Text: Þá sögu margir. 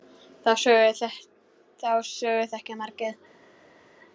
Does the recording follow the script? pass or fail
fail